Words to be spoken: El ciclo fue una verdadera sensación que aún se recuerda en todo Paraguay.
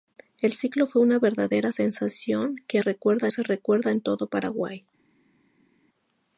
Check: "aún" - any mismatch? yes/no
yes